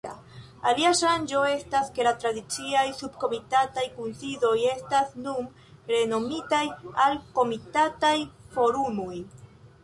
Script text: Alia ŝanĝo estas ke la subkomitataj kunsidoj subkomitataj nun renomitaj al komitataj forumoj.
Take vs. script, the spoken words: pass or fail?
fail